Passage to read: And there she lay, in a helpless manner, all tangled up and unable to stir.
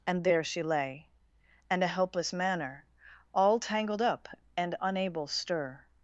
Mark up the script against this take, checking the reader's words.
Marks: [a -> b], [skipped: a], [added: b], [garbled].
And there she lay, [in -> and] a helpless manner, all tangled up and unable [skipped: to] stir.